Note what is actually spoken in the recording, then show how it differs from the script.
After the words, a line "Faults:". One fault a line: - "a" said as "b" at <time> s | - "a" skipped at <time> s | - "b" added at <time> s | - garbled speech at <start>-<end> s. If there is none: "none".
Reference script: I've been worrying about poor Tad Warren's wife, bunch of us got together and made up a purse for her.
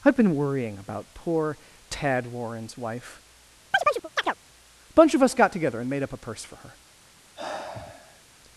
I've been worrying about poor Tad Warren's wife, a bunch of us got together and made up a purse for her.
Faults:
- "a" added at 4.9 s